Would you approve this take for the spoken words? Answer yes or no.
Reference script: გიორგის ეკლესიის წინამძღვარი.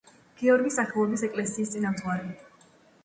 no